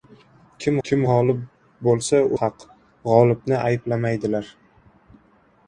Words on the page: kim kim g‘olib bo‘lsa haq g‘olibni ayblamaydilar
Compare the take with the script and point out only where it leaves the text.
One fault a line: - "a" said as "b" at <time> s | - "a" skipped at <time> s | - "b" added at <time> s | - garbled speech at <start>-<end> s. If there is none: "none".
none